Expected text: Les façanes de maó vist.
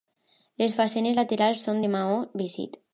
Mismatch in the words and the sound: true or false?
true